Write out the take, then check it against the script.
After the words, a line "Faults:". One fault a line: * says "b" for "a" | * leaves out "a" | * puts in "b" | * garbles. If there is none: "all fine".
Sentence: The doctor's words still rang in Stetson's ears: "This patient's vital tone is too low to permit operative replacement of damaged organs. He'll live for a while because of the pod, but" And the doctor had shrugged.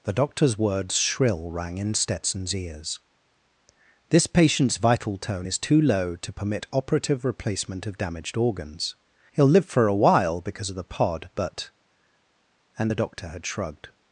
The doctor's words shrill rang in Stetson's ears: "This patient's vital tone is too low to permit operative replacement of damaged organs. He'll live for a while because of the pod, but" And the doctor had shrugged.
Faults:
* says "shrill" for "still"